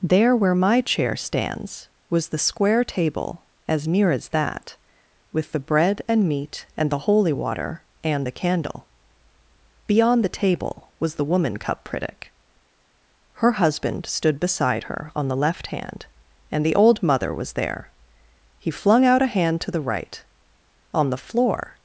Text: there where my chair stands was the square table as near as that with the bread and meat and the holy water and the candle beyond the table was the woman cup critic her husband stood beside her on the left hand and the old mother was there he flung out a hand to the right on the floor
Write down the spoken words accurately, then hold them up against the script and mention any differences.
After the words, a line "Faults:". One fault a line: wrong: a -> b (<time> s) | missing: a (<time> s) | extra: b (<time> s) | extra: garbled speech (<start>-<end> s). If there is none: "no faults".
there where my chair stands was the square table as near as that with the bread and meat and the holy water and the candle beyond the table was the woman cup critic her husband stood beside her on the left hand and the old mother was there he flung out a hand to the right on the floor
Faults:
no faults